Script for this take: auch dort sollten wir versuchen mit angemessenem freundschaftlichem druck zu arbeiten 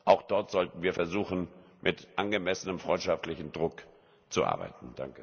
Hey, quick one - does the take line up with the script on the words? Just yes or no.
yes